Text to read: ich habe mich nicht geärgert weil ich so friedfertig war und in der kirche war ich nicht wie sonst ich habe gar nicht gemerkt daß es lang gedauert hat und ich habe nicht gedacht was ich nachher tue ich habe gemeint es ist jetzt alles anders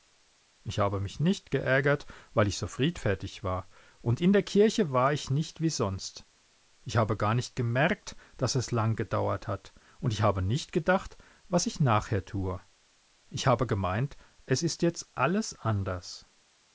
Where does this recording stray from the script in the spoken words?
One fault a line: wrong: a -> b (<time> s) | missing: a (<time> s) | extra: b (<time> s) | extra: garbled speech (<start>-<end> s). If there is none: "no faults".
no faults